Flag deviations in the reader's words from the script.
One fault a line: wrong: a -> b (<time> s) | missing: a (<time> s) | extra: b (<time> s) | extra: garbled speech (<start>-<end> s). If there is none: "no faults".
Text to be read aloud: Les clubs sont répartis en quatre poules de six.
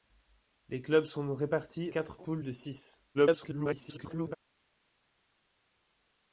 missing: en (1.9 s)
extra: garbled speech (3.1-4.4 s)